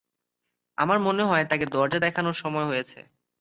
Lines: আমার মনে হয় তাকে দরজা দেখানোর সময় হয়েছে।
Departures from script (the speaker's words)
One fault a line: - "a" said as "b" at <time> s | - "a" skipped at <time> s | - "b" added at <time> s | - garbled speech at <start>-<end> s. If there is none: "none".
none